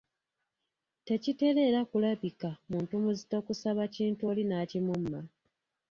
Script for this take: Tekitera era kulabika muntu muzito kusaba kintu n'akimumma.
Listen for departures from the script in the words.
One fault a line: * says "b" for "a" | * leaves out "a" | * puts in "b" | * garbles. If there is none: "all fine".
* puts in "oli"